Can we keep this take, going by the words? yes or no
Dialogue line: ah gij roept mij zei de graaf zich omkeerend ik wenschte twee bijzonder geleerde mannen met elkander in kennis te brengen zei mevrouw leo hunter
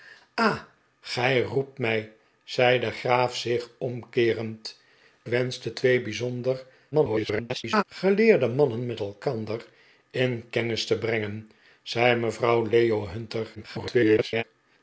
no